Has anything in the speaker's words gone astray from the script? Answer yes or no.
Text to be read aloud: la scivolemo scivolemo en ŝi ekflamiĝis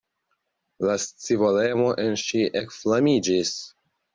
yes